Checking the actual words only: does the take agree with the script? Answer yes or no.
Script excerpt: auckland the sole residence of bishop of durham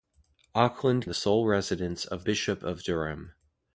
yes